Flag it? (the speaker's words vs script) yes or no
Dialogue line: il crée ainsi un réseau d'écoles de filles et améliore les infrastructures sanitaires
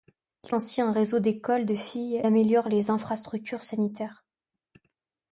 yes